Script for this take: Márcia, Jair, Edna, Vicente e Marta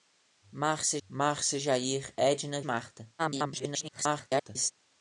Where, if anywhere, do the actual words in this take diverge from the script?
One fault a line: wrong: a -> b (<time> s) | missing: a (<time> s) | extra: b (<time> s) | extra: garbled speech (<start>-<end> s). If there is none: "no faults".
extra: márcia (1.1 s)
missing: Vicente (2.6 s)
extra: garbled speech (3.2-4.7 s)